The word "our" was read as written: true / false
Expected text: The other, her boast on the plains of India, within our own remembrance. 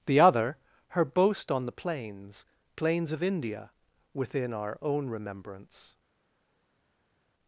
true